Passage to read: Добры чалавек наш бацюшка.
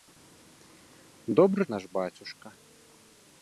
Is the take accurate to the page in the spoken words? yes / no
no